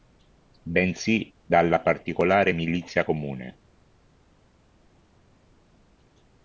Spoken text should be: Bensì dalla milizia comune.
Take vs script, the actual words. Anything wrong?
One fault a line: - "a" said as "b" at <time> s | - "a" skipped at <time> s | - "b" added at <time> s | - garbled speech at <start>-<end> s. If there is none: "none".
- "particolare" added at 1.8 s